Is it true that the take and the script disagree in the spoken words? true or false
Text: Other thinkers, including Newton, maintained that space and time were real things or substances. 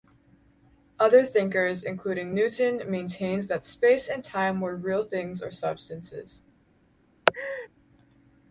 false